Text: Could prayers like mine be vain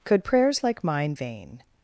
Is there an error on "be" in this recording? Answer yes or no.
yes